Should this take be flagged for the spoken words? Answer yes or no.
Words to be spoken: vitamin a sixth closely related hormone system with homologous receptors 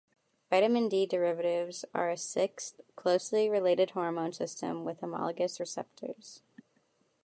yes